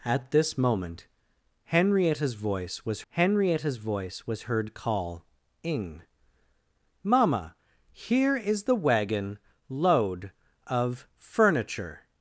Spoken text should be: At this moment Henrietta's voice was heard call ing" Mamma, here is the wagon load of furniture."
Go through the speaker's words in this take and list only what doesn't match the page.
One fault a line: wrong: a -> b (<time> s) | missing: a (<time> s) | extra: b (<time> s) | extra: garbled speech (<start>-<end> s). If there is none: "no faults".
extra: Henrietta's voice was (3.1 s)